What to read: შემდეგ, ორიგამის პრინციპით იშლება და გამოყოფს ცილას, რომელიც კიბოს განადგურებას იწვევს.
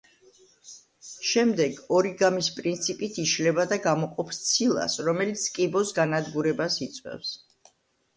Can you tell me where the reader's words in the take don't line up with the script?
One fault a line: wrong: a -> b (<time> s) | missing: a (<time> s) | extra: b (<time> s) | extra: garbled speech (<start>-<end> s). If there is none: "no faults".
no faults